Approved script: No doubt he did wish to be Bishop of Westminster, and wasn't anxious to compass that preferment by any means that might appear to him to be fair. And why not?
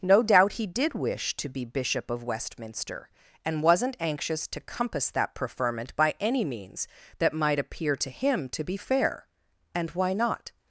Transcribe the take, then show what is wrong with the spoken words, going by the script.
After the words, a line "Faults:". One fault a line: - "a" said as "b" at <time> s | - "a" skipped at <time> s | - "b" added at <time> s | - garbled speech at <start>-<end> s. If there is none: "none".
No doubt he did wish to be Bishop of Westminster, and wasn't anxious to compass that preferment by any means that might appear to him to be fair. And why not?
Faults:
none